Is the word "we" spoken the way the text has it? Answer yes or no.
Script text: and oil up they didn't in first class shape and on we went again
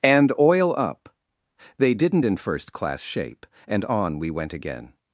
yes